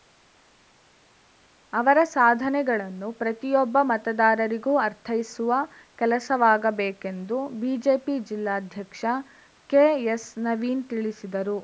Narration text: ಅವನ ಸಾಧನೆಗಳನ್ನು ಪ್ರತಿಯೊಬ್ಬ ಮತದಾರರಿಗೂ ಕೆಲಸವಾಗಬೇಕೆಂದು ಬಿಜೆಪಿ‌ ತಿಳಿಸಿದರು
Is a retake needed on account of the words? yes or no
yes